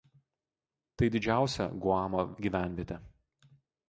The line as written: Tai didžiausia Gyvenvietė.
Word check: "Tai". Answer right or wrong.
right